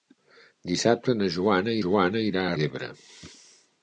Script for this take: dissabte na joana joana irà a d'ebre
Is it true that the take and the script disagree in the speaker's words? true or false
false